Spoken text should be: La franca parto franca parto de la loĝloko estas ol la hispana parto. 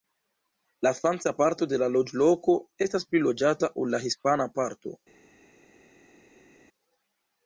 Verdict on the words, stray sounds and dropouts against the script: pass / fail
fail